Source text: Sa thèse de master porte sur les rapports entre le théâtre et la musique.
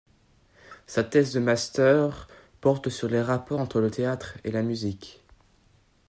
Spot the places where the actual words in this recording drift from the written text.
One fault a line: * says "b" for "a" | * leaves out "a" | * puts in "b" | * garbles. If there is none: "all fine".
all fine